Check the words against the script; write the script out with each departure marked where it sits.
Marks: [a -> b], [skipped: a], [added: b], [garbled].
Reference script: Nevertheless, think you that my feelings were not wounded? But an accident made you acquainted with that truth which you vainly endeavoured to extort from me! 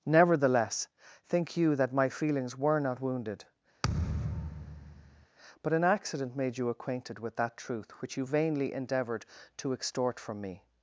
Nevertheless, think you that my feelings were not wounded? But an accident made you acquainted with that truth which you vainly endeavoured to extort from me!